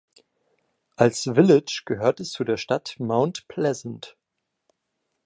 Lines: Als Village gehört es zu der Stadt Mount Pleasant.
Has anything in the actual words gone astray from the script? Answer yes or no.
no